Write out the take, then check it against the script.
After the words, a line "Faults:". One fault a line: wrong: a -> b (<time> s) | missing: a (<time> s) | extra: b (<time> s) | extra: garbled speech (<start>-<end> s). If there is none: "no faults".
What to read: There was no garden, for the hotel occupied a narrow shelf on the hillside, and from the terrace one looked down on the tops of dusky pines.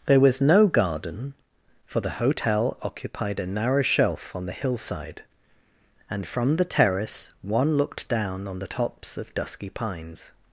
There was no garden, for the hotel occupied a narrow shelf on the hillside, and from the terrace one looked down on the tops of dusky pines.
Faults:
no faults